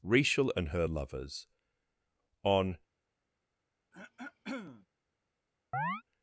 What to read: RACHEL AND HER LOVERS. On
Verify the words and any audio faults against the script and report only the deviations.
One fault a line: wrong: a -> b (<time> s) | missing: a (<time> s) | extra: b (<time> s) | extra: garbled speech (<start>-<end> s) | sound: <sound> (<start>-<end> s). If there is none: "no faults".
sound: throat clearing (3.9-4.9 s)
sound: chirp (5.7-6.0 s)